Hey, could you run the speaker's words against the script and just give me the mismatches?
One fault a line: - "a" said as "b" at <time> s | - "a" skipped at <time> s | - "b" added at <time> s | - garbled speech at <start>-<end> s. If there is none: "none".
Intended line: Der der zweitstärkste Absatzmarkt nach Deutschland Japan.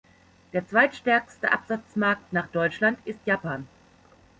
- "der" skipped at 0.7 s
- "ist" added at 3.0 s